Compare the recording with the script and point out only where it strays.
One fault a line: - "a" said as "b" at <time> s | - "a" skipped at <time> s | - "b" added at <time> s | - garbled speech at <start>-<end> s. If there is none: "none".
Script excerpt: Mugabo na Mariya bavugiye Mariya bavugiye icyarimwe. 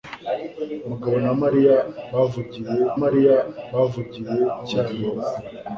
none